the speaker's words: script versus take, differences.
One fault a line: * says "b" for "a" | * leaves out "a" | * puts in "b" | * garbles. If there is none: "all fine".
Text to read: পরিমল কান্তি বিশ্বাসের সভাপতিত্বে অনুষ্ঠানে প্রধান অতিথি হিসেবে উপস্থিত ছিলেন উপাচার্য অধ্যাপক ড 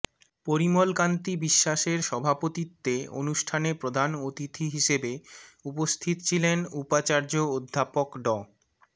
all fine